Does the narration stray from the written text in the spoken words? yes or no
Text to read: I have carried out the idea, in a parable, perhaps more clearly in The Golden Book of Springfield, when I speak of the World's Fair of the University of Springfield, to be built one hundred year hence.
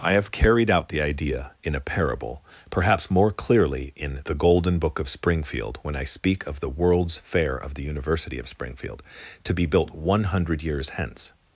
yes